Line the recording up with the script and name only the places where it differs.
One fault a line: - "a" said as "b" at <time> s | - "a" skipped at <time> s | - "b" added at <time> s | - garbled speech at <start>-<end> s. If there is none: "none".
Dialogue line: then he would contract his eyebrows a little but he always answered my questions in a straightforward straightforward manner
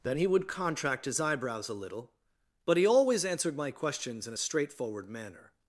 - "straightforward" skipped at 5.1 s